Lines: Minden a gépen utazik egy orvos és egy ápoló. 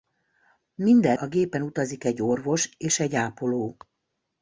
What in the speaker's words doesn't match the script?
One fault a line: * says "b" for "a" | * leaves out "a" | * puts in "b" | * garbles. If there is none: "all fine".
all fine